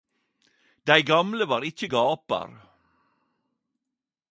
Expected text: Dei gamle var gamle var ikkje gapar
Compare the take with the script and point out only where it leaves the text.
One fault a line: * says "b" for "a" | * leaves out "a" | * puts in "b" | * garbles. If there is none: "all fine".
* leaves out "gamle var"